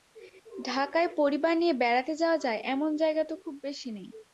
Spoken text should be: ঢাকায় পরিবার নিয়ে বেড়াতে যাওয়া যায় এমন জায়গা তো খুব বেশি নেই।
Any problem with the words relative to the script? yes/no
no